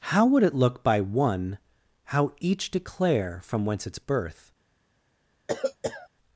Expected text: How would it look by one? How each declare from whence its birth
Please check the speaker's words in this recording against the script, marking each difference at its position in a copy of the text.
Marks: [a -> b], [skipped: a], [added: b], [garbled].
How would it look by one? How each declare from whence its birth